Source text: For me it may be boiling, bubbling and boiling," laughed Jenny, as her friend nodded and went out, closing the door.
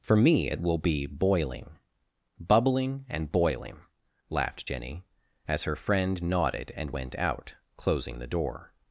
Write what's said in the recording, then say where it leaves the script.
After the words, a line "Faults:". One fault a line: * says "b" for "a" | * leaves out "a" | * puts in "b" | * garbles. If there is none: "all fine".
For me it will be boiling, bubbling and boiling," laughed Jenny, as her friend nodded and went out, closing the door.
Faults:
* says "will" for "may"